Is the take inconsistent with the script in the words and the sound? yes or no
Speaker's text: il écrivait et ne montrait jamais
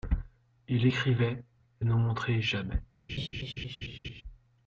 yes